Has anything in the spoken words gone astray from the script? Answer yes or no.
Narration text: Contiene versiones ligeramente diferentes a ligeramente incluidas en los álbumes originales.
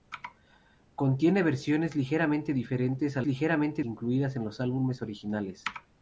no